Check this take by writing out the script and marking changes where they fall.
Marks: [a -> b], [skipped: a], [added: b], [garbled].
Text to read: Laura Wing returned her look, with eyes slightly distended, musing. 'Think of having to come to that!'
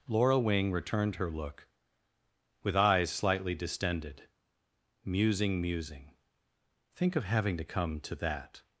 Laura Wing returned her look, with eyes slightly distended, musing. [added: musing] 'Think of having to come to that!'